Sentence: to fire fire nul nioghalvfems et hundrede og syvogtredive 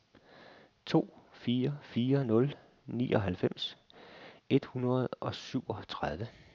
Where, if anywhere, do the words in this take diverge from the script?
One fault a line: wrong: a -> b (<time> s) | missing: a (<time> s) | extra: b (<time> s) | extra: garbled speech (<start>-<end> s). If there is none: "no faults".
no faults